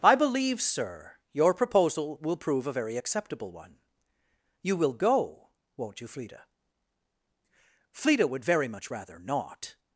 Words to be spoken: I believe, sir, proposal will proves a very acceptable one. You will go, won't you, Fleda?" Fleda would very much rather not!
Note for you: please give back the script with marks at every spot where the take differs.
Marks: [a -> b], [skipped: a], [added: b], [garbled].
I believe, sir, [added: your] proposal will [proves -> prove] a very acceptable one. You will go, won't you, Fleda?" Fleda would very much rather not!